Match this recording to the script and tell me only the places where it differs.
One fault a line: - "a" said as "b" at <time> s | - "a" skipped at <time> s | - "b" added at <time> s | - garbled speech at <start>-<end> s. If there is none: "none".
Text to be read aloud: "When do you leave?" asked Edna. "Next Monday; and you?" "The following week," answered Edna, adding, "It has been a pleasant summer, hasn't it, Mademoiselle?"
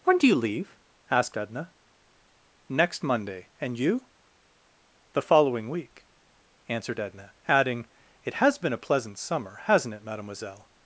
none